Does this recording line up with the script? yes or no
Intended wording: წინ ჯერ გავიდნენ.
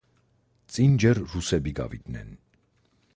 no